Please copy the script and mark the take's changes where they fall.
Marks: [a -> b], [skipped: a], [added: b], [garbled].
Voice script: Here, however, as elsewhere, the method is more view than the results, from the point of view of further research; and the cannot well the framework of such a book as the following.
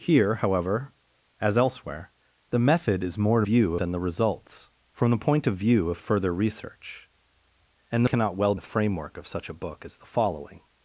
Here, however, as elsewhere, the method is more view than the results, from the point of view of further research; and the cannot well the framework of such a book as the following.